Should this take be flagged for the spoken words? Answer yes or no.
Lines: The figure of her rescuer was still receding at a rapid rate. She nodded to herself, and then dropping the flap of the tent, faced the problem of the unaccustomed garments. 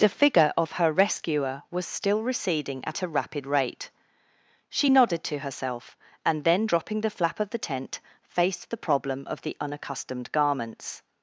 no